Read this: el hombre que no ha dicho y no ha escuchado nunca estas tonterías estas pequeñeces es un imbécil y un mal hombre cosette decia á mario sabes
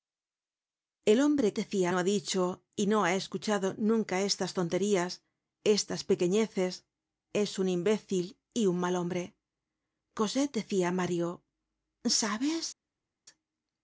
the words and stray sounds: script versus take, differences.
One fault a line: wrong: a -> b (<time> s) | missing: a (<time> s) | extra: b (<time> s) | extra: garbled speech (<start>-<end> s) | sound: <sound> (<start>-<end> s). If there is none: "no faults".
wrong: que -> decia (1.6 s)